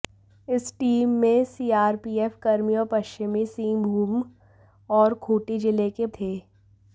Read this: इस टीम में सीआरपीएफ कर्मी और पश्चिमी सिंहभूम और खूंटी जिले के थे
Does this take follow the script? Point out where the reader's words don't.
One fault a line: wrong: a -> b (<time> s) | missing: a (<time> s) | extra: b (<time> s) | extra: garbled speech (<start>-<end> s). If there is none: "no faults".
no faults